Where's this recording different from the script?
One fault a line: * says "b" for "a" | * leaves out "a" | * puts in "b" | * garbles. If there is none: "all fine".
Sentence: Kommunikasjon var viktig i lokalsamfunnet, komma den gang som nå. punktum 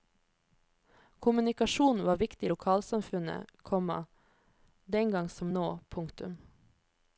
all fine